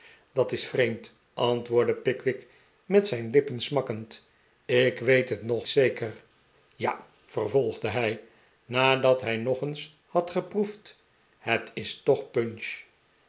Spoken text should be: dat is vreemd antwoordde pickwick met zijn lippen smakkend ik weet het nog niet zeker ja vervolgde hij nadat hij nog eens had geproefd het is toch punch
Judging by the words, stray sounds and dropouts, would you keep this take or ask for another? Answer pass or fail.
fail